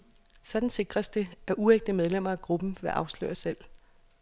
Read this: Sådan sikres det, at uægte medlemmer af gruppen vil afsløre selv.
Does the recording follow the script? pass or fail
pass